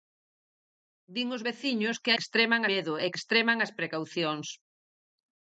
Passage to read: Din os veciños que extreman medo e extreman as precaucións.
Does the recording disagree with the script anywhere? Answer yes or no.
no